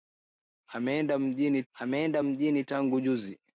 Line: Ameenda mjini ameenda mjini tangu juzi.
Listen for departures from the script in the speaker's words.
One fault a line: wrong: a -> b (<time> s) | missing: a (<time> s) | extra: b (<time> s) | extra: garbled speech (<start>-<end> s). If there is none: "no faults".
no faults